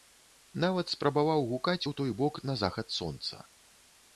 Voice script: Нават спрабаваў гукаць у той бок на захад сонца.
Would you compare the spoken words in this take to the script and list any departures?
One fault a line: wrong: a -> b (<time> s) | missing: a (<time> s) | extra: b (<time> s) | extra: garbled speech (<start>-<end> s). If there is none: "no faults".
no faults